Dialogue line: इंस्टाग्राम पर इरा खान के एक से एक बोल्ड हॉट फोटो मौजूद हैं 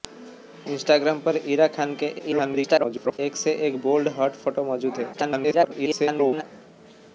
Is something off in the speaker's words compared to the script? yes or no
yes